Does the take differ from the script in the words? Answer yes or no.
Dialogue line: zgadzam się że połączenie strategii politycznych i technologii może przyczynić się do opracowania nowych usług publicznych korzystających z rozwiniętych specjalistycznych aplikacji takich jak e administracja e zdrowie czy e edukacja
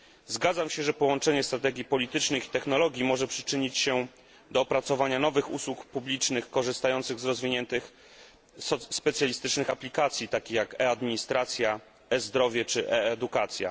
no